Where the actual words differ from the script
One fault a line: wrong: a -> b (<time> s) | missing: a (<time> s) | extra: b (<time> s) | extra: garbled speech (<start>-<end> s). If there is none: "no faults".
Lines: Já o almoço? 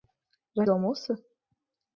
no faults